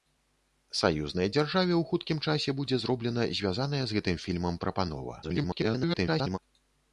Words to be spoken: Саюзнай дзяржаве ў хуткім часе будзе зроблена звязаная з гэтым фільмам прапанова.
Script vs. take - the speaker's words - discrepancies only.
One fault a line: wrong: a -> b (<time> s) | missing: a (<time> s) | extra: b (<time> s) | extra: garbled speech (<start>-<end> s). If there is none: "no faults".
extra: garbled speech (5.2-6.4 s)